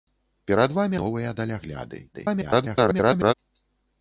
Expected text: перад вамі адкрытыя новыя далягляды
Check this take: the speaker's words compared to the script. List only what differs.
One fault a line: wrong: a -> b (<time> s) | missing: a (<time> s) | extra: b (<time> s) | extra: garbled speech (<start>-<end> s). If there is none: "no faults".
missing: адкрытыя (1.0 s)
extra: garbled speech (2.1-3.3 s)